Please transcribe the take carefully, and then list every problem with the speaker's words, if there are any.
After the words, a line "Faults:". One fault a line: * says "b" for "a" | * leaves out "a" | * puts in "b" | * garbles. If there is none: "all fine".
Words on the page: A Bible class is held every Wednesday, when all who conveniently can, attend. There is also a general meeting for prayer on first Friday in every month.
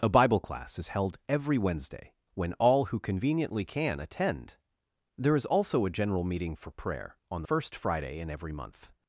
A Bible class is held every Wednesday, when all who conveniently can, attend. There is also a general meeting for prayer on first Friday in every month.
Faults:
all fine